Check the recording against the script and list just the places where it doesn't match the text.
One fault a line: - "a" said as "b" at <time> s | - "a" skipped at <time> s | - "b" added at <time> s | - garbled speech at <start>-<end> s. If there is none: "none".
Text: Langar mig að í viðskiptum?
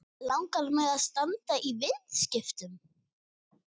- "standa" added at 1.0 s